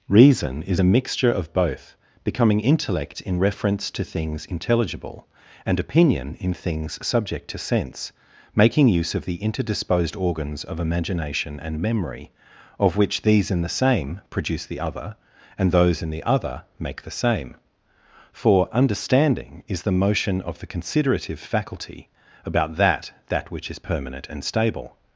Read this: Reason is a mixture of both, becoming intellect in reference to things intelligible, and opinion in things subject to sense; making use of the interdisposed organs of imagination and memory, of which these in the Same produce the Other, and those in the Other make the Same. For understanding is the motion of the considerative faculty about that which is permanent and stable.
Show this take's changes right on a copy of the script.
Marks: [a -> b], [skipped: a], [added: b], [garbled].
Reason is a mixture of both, becoming intellect in reference to things intelligible, and opinion in things subject to sense; making use of the interdisposed organs of imagination and memory, of which these in the Same produce the Other, and those in the Other make the Same. For understanding is the motion of the considerative faculty about that [added: that] which is permanent and stable.